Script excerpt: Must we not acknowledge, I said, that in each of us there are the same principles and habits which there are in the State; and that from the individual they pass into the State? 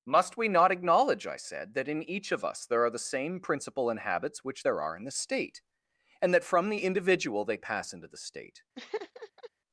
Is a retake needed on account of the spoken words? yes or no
yes